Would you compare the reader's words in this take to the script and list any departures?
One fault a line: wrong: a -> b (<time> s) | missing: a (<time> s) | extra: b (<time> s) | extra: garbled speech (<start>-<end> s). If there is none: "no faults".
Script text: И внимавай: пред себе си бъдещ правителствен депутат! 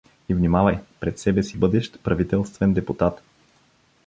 no faults